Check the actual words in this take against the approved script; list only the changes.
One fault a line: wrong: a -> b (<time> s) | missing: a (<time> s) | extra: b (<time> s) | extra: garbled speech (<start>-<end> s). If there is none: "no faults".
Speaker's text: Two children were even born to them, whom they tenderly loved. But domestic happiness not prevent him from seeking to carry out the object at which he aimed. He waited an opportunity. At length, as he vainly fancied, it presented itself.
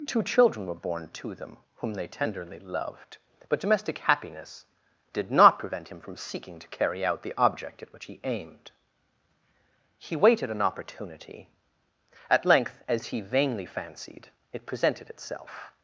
missing: even (0.8 s)
extra: did (5.1 s)